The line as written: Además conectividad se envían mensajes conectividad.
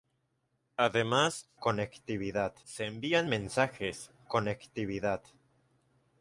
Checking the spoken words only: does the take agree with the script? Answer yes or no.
yes